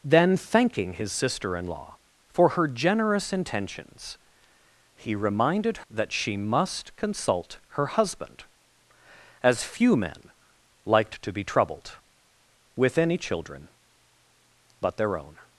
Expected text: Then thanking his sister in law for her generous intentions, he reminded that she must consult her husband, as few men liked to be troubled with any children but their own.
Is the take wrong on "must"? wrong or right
right